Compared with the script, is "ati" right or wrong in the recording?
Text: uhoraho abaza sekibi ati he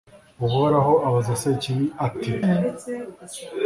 right